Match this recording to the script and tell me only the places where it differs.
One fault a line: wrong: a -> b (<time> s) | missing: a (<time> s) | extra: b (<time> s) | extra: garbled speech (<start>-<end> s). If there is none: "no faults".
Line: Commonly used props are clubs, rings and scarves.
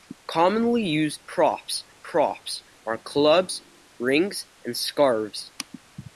extra: props (2.0 s)